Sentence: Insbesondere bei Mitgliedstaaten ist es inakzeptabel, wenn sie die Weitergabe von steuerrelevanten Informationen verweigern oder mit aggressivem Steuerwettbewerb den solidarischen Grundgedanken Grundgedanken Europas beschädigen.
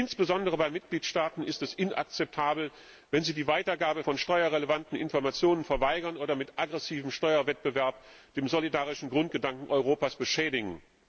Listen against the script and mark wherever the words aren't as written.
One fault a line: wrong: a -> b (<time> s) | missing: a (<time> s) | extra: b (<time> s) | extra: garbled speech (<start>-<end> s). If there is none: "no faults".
missing: Grundgedanken (9.7 s)